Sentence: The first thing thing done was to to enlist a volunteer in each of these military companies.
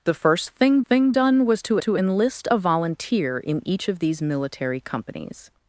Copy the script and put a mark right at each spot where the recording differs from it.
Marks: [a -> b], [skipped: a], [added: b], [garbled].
The first thing thing done was to to enlist a volunteer in each of these military companies.